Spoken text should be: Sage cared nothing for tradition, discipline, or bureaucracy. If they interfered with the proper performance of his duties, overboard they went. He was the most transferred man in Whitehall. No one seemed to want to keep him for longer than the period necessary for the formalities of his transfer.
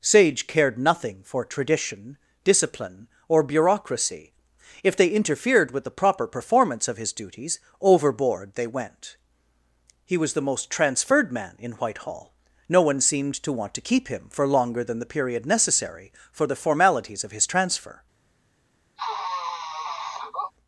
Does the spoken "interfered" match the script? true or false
true